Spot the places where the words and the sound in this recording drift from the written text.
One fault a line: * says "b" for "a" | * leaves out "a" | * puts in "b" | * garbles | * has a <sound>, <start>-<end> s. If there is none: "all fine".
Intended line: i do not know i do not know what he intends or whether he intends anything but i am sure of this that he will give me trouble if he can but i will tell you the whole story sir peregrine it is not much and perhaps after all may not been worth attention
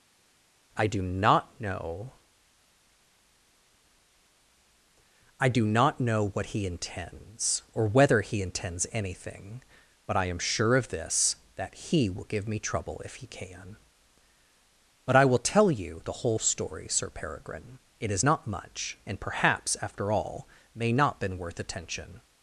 all fine